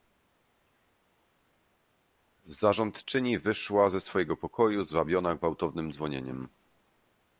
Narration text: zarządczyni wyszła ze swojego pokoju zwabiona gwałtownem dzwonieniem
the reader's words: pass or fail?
pass